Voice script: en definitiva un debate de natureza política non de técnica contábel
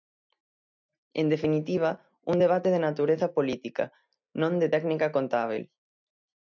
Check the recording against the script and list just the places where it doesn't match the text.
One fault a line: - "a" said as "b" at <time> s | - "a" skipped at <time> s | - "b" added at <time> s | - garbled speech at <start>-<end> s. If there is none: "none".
none